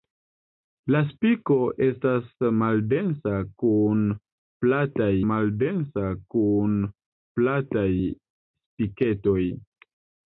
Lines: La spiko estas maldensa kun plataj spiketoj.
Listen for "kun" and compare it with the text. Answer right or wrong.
right